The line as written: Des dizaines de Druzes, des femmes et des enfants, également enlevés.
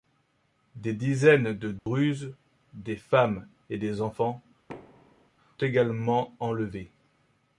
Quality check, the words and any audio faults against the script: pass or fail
fail